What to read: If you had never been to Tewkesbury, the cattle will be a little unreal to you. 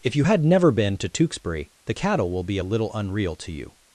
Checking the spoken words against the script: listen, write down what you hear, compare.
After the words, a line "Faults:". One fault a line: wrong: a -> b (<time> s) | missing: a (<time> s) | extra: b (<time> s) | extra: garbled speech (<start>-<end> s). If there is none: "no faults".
If you had never been to Tewkesbury, the cattle will be a little unreal to you.
Faults:
no faults